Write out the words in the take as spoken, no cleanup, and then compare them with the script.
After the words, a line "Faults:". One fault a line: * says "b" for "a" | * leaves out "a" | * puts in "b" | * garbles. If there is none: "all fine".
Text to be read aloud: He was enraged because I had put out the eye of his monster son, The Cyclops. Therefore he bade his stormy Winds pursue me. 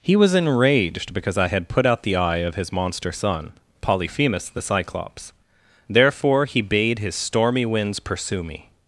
He was enraged because I had put out the eye of his monster son, Polyphemus the Cyclops. Therefore he bade his stormy Winds pursue me.
Faults:
* puts in "Polyphemus"